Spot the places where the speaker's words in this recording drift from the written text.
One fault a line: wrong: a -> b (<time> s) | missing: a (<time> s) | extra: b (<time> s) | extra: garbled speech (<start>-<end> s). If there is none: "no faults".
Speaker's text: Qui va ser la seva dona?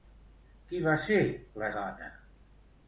missing: seva (1.7 s)